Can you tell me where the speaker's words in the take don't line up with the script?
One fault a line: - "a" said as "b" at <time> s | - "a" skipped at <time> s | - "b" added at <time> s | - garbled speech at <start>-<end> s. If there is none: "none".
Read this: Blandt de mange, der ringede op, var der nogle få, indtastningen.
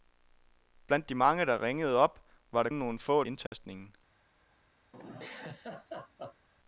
none